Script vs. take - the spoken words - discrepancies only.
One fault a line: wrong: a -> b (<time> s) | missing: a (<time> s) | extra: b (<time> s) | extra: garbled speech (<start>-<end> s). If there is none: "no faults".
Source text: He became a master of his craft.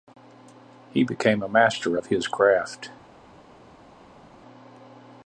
no faults